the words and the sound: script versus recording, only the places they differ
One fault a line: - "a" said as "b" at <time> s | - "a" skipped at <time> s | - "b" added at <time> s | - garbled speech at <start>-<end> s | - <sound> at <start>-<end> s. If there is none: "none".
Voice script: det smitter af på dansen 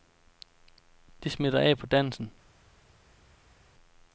none